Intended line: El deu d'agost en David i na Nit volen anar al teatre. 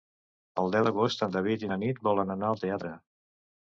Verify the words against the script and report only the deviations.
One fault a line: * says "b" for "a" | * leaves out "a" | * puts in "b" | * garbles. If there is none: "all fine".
all fine